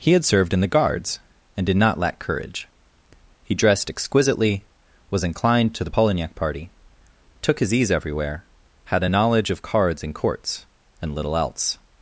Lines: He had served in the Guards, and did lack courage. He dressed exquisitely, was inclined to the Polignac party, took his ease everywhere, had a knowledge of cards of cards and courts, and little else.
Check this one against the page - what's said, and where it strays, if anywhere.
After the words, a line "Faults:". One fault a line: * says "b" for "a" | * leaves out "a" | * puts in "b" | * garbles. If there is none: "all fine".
He had served in the Guards, and did not lack courage. He dressed exquisitely, was inclined to the Polignac party, took his ease everywhere, had a knowledge of cards and courts, and little else.
Faults:
* puts in "not"
* leaves out "of cards"